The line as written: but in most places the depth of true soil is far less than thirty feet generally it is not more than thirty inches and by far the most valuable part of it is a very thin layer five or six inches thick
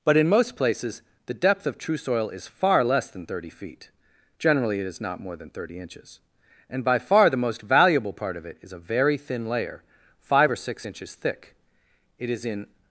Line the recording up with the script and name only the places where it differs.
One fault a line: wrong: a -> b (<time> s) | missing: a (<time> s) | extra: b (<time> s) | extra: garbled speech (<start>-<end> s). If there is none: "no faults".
extra: it is in (12.2 s)